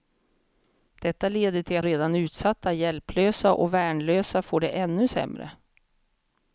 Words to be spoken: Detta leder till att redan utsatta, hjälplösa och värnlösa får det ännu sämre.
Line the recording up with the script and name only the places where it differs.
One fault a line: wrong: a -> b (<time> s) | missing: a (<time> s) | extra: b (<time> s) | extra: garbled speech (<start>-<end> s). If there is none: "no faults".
no faults